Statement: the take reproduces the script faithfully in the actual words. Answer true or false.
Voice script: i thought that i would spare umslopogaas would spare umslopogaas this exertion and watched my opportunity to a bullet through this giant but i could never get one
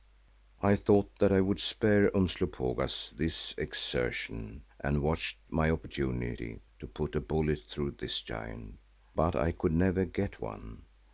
false